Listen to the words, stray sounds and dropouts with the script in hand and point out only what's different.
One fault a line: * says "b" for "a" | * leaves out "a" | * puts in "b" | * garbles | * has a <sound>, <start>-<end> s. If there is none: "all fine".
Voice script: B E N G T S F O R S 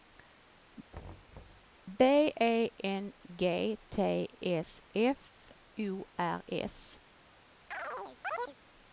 * has a thud, 0.9-1.7 s
* has a chirp, 7.7-8.6 s